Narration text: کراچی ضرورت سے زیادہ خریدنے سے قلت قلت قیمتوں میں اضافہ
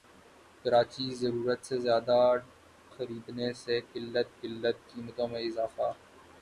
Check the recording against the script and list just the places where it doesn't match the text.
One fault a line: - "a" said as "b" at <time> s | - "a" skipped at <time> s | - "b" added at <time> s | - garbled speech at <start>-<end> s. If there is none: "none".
none